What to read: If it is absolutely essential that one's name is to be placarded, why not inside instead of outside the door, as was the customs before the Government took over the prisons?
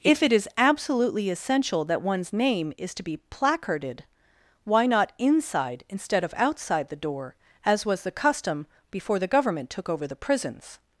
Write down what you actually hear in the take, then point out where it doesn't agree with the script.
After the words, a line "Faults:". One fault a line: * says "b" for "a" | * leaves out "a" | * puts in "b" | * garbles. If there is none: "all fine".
If it is absolutely essential that one's name is to be placarded, why not inside instead of outside the door, as was the custom before the Government took over the prisons?
Faults:
* says "custom" for "customs"